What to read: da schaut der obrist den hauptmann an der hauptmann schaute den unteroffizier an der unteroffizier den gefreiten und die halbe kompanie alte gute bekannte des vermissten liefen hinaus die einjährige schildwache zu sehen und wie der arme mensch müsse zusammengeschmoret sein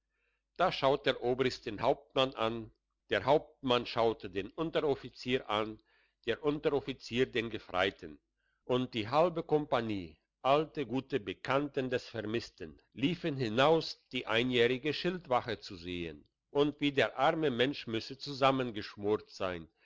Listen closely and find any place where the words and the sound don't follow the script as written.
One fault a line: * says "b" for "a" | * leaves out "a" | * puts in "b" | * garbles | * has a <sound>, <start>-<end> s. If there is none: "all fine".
all fine